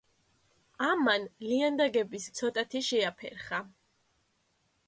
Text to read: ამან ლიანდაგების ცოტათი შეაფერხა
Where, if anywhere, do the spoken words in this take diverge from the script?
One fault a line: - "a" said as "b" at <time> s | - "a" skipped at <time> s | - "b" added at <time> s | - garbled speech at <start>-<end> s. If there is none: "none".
none